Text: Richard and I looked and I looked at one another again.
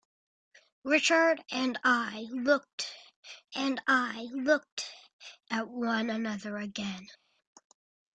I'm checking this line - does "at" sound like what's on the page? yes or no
yes